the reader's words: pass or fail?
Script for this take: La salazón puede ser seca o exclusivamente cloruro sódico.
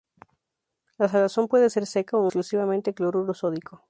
pass